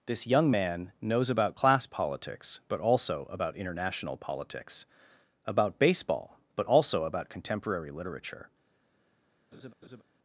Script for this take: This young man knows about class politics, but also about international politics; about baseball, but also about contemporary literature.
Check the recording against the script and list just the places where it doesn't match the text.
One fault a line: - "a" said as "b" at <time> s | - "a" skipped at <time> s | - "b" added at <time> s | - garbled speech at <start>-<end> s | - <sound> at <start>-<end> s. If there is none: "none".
- laugh at 9.5-10.0 s